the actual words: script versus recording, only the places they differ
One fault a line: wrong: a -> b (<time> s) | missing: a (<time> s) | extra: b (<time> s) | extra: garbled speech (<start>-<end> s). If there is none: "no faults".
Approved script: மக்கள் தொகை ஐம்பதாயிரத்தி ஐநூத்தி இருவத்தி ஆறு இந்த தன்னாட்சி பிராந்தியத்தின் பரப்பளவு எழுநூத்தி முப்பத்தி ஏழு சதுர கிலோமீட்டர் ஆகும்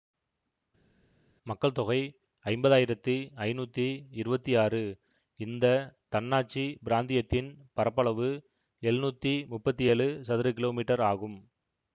no faults